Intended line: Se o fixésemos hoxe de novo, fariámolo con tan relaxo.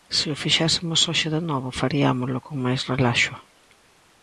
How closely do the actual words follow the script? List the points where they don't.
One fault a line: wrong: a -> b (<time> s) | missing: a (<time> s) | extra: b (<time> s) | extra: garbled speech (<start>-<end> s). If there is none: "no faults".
wrong: tan -> máis (2.6 s)